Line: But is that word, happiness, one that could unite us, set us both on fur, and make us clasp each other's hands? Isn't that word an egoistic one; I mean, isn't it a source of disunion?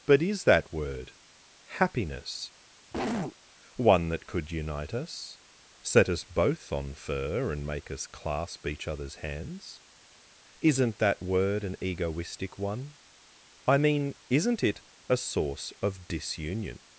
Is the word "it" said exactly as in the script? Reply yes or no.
yes